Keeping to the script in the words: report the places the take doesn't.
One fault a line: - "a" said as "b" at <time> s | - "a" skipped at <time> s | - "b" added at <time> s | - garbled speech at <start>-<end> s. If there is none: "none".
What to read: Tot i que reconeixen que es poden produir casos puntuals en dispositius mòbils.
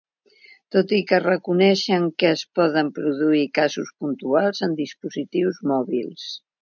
none